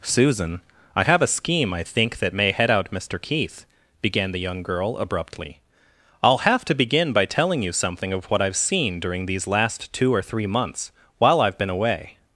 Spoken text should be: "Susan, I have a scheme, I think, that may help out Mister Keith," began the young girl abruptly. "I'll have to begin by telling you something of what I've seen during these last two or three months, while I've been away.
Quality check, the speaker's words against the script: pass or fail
fail